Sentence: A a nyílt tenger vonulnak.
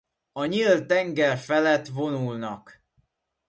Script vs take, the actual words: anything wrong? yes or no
yes